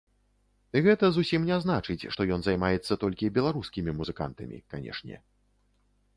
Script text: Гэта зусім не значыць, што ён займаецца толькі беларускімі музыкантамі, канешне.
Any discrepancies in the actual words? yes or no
no